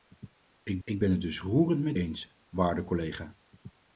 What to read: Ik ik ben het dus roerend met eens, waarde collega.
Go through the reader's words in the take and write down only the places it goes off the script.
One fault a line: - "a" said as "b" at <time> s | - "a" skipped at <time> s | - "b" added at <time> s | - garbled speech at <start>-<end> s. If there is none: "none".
none